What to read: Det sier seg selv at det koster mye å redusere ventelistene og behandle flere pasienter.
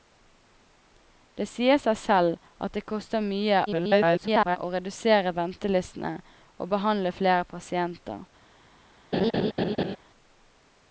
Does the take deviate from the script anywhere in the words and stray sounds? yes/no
yes